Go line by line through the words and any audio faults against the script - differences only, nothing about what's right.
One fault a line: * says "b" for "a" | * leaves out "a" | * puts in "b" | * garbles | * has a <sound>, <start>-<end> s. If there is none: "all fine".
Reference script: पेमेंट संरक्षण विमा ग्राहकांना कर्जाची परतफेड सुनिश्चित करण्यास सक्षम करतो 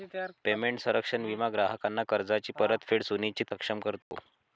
* leaves out "करण्यास"
* has a dropout, 4.0-4.1 s